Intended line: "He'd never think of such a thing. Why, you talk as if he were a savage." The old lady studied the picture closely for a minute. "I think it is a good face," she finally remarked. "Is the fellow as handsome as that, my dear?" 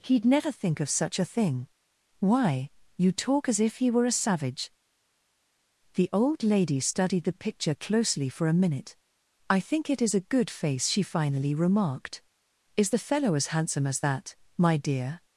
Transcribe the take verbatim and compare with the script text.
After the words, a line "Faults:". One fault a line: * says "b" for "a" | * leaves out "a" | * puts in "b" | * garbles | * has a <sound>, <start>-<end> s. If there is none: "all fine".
"He'd never think of such a thing. Why, you talk as if he were a savage." The old lady studied the picture closely for a minute. "I think it is a good face," she finally remarked. "Is the fellow as handsome as that, my dear?"
Faults:
all fine